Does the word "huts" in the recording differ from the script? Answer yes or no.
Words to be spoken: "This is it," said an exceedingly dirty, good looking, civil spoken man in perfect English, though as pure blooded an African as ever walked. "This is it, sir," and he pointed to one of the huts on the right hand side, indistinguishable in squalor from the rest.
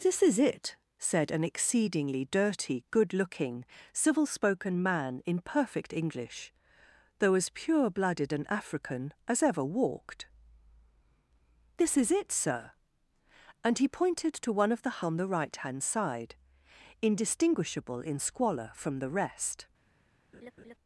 yes